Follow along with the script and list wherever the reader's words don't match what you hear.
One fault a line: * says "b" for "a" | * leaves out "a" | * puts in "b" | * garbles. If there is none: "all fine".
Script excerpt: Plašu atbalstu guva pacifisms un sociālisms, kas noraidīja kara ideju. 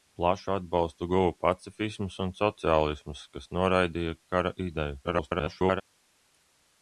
* garbles